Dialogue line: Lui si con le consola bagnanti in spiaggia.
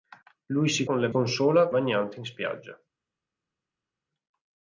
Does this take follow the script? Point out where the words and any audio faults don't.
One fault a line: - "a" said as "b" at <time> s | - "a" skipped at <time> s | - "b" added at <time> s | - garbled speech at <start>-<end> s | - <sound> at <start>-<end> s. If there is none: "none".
none